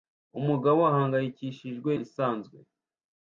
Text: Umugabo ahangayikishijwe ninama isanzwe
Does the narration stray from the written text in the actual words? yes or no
yes